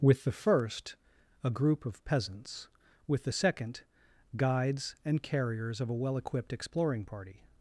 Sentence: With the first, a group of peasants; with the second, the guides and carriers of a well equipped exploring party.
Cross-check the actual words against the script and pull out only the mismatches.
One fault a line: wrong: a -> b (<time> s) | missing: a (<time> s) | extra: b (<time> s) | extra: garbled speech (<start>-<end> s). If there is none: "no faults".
missing: the (3.8 s)